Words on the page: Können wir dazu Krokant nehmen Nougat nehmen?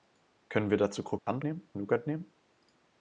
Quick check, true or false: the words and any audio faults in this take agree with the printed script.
false